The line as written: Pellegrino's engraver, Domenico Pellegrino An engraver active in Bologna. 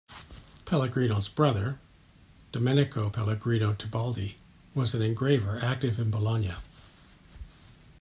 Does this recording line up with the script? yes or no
no